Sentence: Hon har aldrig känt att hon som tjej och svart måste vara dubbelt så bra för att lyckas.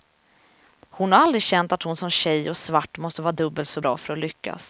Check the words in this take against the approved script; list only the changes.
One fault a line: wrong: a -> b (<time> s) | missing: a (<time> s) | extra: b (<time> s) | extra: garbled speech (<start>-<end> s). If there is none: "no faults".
no faults